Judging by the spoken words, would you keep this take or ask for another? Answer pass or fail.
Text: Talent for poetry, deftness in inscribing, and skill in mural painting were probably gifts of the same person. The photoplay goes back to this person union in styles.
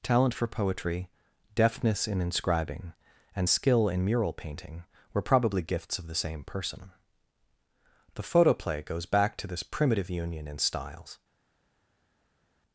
fail